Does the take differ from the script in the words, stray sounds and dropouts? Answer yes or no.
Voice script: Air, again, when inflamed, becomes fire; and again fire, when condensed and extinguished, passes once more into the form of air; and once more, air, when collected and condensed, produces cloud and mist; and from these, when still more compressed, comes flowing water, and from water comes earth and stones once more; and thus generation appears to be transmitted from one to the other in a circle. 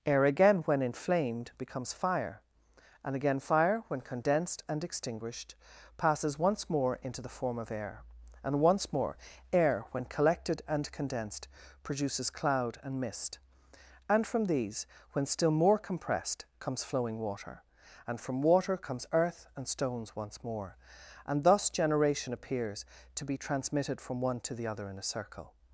no